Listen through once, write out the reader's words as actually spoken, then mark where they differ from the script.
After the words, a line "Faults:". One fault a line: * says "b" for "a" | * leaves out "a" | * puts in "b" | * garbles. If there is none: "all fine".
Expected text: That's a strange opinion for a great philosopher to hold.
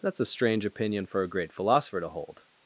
That's a strange opinion for a great philosopher to hold.
Faults:
all fine